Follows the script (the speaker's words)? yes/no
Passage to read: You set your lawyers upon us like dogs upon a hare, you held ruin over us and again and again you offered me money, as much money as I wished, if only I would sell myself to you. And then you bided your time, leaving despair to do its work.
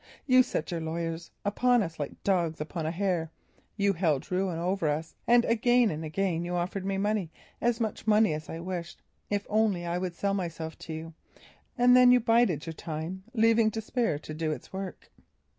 yes